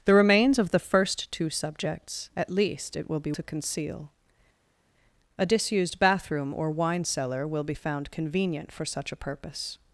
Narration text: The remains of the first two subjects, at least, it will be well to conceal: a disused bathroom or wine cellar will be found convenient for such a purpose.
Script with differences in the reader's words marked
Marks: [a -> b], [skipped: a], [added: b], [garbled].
The remains of the first two subjects, at least, it will be [skipped: well] to conceal: a disused bathroom or wine cellar will be found convenient for such a purpose.